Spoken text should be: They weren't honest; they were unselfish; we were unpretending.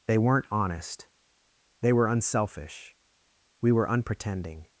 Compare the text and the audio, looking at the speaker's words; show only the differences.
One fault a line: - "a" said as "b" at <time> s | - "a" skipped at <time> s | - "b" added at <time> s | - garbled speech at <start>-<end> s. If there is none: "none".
none